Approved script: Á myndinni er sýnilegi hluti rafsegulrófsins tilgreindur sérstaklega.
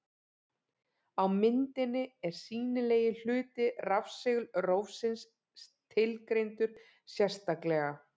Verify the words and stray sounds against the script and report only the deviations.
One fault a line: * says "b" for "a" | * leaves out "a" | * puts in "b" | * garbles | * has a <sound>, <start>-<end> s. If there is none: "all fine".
all fine